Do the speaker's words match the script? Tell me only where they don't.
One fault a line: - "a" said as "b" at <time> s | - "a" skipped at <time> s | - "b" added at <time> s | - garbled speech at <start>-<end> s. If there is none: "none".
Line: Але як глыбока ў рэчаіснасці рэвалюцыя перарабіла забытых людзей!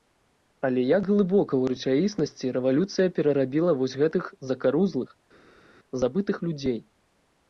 - "вось гэтых закарузлых" added at 3.8 s